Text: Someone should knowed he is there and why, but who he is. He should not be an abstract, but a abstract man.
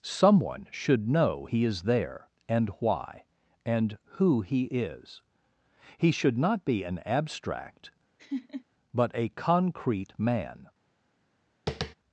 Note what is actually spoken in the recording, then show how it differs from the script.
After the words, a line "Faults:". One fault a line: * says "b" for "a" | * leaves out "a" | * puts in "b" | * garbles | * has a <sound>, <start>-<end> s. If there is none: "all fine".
Someone should know he is there and why, and who he is. He should not be an abstract, but a concrete man.
Faults:
* says "know" for "knowed"
* says "and" for "but"
* has a laugh, 8.2-8.6 s
* says "concrete" for "abstract"
* has a tap, 11.7-11.9 s